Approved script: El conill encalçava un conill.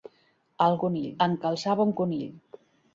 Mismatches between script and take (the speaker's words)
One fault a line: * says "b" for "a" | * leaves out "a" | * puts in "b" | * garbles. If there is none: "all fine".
all fine